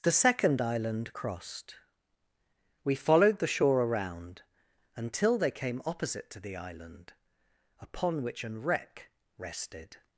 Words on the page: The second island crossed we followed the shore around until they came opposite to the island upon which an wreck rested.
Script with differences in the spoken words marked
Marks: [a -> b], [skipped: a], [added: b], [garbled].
The second island crossed we followed the shore around until they came opposite to the island upon which an wreck rested.